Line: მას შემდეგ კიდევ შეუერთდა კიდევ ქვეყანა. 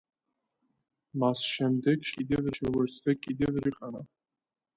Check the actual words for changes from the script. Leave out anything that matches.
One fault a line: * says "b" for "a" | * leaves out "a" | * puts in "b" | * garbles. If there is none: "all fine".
all fine